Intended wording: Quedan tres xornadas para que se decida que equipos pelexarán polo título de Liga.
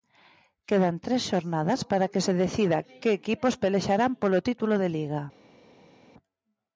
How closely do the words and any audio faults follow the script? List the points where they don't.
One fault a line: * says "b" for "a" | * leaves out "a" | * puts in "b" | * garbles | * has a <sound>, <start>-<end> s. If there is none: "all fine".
all fine